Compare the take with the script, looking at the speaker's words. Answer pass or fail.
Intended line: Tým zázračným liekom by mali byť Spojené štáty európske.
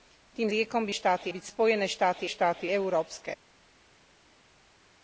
fail